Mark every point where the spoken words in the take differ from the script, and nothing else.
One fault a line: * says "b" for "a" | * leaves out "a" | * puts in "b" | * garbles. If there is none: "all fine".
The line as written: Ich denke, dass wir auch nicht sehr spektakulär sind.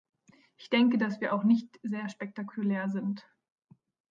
all fine